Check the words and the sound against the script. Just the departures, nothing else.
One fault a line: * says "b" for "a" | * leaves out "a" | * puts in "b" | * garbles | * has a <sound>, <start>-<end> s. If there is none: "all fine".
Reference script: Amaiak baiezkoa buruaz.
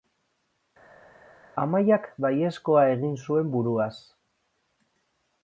* puts in "egin zuen"